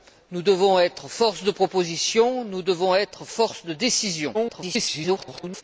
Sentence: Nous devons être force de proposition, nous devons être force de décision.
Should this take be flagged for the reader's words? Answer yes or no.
yes